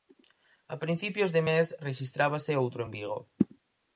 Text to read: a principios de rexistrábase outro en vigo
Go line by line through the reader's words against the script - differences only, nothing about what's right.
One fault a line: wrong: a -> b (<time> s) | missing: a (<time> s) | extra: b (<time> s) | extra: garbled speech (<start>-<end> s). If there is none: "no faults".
extra: mes (1.5 s)